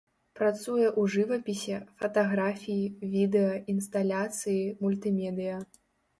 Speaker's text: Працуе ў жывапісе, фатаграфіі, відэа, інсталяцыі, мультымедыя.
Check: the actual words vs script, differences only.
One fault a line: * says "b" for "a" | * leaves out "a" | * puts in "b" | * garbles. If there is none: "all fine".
all fine